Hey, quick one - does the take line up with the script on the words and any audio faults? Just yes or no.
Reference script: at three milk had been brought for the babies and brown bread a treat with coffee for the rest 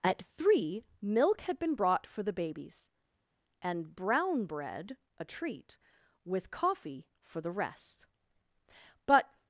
no